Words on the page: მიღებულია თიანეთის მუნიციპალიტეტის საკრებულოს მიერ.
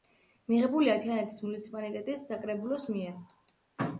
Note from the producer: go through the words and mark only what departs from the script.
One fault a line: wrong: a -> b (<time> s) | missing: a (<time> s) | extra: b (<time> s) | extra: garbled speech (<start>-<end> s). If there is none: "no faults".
no faults